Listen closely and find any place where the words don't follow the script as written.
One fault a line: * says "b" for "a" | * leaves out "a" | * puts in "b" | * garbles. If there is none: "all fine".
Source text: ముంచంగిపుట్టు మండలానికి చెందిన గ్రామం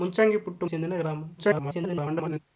* leaves out "మండలానికి"
* garbles